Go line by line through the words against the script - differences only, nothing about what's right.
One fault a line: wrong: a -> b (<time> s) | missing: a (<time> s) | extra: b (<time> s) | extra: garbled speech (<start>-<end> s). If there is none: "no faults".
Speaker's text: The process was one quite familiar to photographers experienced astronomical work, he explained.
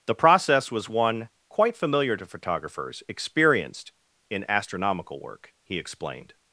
extra: in (4.3 s)